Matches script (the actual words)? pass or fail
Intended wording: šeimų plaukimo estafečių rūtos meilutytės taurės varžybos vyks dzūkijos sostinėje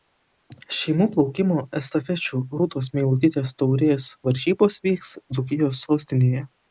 pass